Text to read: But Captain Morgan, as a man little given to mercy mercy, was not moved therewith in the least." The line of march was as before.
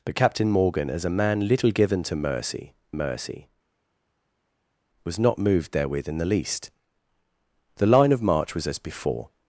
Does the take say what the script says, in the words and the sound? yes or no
yes